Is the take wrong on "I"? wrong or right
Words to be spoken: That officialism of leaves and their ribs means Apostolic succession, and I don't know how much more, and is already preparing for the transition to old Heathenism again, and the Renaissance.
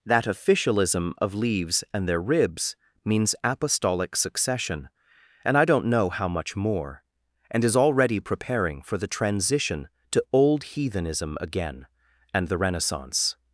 right